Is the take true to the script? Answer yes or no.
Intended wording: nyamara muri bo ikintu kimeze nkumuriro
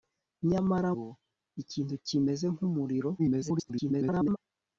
no